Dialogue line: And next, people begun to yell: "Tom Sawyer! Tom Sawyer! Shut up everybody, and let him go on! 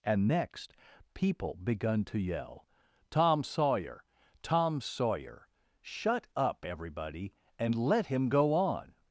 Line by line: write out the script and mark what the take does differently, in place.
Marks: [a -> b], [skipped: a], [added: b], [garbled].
And next, people begun to yell: "Tom Sawyer! Tom Sawyer! Shut up everybody, and let him go on!